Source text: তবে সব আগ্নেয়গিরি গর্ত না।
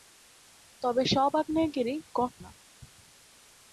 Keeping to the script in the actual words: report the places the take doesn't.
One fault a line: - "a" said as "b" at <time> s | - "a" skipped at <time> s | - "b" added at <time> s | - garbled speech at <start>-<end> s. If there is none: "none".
none